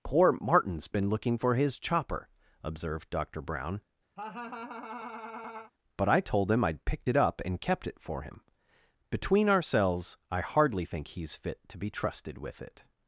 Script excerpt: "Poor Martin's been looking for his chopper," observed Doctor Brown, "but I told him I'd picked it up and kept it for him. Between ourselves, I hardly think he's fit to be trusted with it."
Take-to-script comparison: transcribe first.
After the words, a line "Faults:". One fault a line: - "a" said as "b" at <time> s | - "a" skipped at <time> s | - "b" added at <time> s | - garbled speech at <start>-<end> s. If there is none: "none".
"Poor Martin's been looking for his chopper," observed Doctor Brown, "but I told him I'd picked it up and kept it for him. Between ourselves, I hardly think he's fit to be trusted with it."
Faults:
none